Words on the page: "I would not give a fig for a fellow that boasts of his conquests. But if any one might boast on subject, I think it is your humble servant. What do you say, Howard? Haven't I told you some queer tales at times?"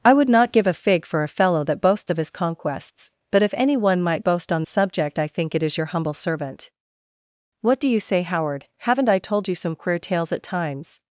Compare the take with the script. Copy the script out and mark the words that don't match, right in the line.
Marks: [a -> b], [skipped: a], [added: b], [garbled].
"I would not give a fig for a fellow that boasts of his conquests. But if any one might boast on subject, I think it is your humble servant. What do you say, Howard? Haven't I told you some queer tales at times?"